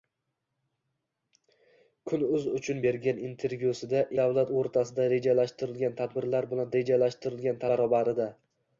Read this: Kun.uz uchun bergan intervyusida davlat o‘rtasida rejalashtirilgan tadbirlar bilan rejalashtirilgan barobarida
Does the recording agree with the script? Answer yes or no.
yes